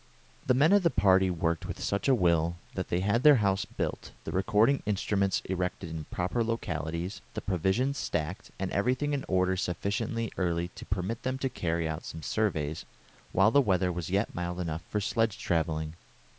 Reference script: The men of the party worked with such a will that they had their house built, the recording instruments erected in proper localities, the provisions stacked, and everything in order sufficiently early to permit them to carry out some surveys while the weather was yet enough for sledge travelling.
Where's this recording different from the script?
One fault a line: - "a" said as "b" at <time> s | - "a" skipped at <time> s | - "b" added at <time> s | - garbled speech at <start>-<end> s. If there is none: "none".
- "mild" added at 14.3 s